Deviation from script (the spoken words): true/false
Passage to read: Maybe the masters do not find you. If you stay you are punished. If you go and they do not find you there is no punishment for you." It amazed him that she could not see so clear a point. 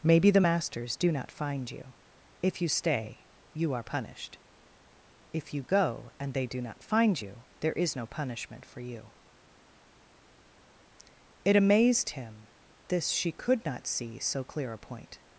true